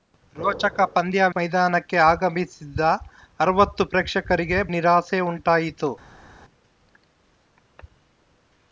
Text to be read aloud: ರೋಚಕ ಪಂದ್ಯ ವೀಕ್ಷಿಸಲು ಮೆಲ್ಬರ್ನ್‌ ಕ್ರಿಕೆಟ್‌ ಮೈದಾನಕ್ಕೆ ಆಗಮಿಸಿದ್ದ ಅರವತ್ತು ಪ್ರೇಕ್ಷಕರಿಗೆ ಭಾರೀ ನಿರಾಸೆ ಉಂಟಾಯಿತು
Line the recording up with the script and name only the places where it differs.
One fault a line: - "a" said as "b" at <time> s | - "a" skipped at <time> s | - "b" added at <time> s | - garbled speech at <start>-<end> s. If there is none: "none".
- "ವೀಕ್ಷಿಸಲು ಮೆಲ್ಬರ್ನ್ ಕ್ರಿಕೆಟ್" skipped at 1.2 s
- "ಭಾರೀ" skipped at 4.6 s